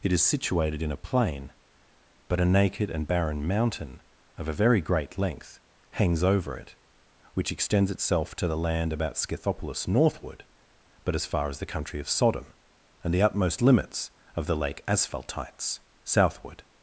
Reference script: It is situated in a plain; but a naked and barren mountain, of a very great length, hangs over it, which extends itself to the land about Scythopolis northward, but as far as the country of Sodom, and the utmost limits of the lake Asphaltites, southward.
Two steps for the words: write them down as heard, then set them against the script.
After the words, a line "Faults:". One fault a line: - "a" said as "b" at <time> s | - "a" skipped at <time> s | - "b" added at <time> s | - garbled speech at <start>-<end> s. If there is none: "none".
It is situated in a plain; but a naked and barren mountain, of a very great length, hangs over it, which extends itself to the land about Scythopolis northward, but as far as the country of Sodom, and the utmost limits of the lake Asphaltites, southward.
Faults:
none